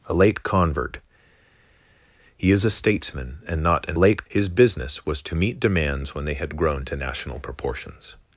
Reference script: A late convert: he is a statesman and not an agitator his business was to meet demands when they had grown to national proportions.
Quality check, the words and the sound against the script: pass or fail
fail